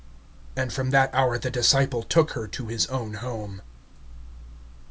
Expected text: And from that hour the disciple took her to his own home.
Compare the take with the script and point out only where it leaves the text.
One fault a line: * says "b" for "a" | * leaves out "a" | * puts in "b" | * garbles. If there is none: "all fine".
all fine